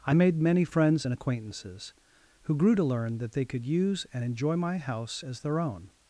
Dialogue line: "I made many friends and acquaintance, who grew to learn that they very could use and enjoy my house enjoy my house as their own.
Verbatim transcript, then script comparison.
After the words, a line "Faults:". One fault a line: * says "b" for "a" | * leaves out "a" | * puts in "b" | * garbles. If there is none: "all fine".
"I made many friends and acquaintances, who grew to learn that they could use and enjoy my house as their own.
Faults:
* says "acquaintances" for "acquaintance"
* leaves out "very"
* leaves out "enjoy my house"